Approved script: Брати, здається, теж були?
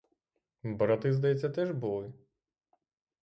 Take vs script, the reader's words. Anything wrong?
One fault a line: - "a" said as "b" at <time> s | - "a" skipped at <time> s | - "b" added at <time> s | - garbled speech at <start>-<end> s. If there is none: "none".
none